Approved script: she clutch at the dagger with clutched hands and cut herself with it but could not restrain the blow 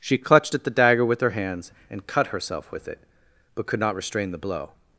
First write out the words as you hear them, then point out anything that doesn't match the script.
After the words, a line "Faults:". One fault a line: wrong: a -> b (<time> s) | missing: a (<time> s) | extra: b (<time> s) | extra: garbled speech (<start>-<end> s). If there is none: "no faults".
she clutched at the dagger with her hands and cut herself with it but could not restrain the blow
Faults:
wrong: clutch -> clutched (0.2 s)
wrong: clutched -> her (1.2 s)